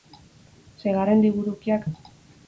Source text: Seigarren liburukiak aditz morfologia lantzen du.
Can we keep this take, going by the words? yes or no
no